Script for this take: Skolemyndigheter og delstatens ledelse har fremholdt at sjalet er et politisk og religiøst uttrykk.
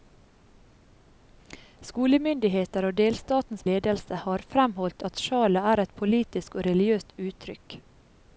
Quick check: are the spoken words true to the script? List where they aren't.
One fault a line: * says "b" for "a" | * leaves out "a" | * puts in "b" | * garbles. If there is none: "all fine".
all fine